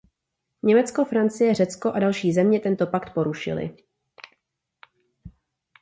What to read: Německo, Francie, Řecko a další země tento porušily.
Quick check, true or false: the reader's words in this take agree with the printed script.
false